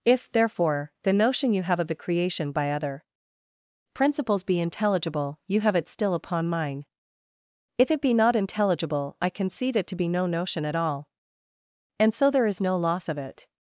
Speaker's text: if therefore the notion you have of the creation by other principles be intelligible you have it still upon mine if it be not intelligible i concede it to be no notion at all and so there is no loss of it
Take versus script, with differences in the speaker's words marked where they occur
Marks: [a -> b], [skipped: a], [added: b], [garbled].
if therefore the notion you have of the creation by other principles be intelligible you have it still upon mine if it be not intelligible i concede it to be no notion at all and so there is no loss of it